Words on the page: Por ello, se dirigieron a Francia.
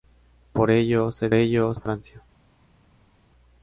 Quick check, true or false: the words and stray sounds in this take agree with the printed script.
false